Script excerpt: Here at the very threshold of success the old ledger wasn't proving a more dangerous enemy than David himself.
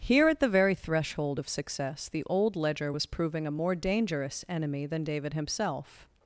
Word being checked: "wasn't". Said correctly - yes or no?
no